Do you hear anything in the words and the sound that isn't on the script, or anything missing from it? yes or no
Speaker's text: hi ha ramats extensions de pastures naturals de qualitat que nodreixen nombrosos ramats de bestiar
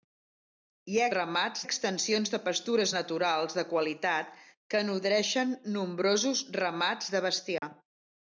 yes